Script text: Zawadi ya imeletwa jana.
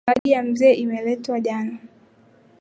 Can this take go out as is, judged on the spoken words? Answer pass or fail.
fail